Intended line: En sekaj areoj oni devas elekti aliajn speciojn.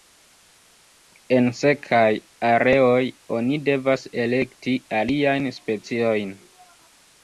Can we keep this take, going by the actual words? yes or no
yes